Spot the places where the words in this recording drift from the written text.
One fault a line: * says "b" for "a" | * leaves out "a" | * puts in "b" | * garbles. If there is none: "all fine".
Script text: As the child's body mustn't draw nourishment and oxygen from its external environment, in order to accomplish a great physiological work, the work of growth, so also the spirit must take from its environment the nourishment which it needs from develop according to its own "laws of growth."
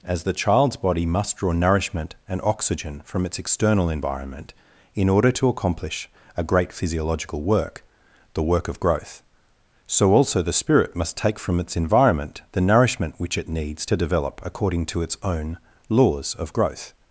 * says "must" for "mustn't"
* says "to" for "from"